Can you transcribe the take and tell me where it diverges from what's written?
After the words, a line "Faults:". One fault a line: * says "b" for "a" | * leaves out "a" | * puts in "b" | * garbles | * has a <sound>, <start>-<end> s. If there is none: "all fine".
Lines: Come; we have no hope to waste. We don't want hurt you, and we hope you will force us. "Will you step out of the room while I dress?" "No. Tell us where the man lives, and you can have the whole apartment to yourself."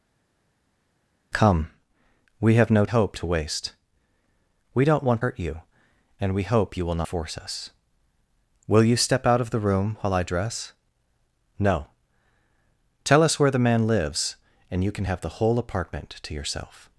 Come; we have no hope to waste. We don't want hurt you, and we hope you will force us. "Will you step out of the room while I dress?" "No. Tell us where the man lives, and you can have the whole apartment to yourself."
Faults:
all fine